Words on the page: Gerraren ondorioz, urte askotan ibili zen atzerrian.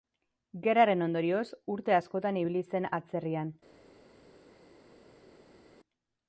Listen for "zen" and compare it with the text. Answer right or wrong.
right